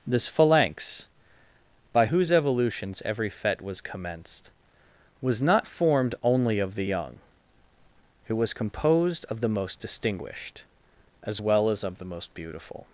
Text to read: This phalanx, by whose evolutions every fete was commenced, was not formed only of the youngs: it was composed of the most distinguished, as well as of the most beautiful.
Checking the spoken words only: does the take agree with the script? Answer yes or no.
no